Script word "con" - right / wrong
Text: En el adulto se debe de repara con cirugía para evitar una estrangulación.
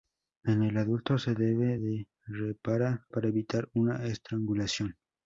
wrong